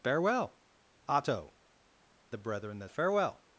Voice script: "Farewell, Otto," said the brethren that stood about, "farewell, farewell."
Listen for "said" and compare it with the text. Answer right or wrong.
wrong